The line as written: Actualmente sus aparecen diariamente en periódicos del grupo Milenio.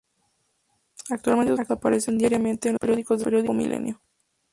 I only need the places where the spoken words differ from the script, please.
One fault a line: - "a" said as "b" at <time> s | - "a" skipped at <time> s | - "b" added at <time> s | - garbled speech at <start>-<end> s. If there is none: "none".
none